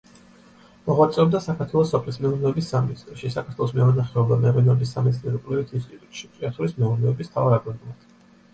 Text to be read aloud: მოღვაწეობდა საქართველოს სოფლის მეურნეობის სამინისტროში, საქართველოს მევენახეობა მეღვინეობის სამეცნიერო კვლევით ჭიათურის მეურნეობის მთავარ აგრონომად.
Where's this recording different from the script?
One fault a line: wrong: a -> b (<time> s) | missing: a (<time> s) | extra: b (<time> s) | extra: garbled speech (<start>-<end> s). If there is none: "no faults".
extra: ინსტიტუტში (5.8 s)